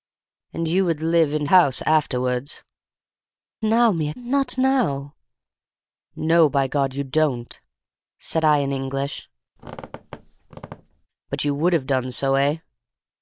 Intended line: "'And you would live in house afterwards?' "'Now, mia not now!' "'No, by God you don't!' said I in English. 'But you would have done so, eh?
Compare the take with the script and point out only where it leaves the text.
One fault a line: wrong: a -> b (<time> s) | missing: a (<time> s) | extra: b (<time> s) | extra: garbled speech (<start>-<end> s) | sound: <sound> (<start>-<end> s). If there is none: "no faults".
sound: squeak (9.6-11.1 s)